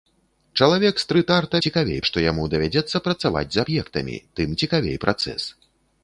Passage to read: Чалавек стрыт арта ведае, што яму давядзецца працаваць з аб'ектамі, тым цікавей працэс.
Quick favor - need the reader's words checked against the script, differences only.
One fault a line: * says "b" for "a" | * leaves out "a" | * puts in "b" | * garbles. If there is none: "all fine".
* says "цікавей" for "ведае"